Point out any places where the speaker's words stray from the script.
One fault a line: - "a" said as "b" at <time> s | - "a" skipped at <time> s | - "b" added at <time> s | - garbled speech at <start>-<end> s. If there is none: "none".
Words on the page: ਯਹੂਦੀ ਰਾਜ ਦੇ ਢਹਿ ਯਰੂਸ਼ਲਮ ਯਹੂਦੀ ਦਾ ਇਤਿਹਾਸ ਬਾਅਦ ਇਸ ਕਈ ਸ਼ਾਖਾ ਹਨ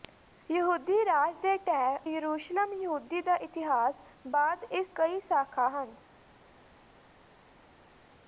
none